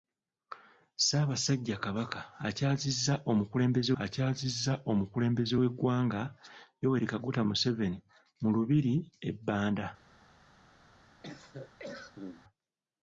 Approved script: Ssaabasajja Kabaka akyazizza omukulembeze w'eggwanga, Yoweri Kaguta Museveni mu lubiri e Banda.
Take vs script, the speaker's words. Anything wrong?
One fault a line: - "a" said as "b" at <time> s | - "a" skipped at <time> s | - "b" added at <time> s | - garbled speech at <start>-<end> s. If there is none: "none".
- "akyazizza omukulembeze" added at 4.0 s